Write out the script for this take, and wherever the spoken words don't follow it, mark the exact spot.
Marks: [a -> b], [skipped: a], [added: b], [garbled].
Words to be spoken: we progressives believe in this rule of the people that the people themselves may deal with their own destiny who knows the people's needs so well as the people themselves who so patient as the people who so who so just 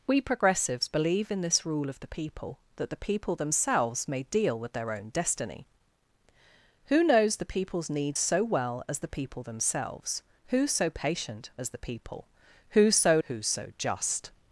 we progressives believe in this rule of the people that the people themselves may deal with their own destiny who knows the people's needs so well as the people themselves who so patient as the people who so who so just